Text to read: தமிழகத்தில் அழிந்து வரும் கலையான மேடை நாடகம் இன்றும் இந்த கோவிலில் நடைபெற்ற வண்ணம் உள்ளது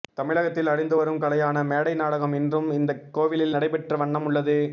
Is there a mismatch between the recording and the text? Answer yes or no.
no